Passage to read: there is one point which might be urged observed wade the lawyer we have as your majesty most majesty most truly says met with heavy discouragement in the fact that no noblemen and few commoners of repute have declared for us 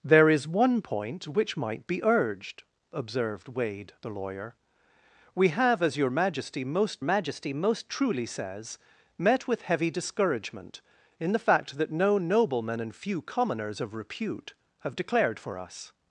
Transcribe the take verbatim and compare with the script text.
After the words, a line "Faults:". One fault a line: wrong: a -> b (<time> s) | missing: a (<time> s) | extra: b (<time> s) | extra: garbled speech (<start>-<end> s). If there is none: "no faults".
there is one point which might be urged observed wade the lawyer we have as your majesty most majesty most truly says met with heavy discouragement in the fact that no noblemen and few commoners of repute have declared for us
Faults:
no faults